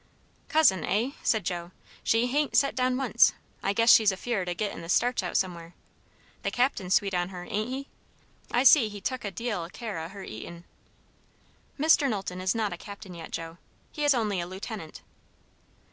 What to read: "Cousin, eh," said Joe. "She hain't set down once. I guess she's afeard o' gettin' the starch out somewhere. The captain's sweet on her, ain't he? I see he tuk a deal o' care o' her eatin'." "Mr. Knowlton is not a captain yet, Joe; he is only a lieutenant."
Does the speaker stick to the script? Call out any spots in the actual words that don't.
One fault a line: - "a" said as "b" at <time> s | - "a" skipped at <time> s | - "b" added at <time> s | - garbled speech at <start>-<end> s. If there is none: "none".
none